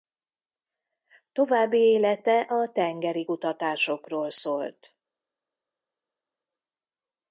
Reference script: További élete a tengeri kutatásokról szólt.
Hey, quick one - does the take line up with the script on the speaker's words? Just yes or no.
yes